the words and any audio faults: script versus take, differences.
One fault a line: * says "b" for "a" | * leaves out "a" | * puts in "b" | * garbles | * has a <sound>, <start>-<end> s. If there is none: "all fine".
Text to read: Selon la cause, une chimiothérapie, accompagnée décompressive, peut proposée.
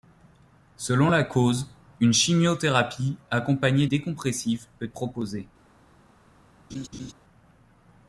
* has a laugh, 6.7-7.1 s